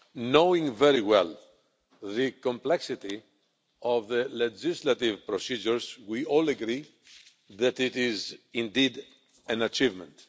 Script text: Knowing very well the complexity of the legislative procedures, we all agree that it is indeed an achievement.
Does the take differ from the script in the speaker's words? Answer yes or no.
no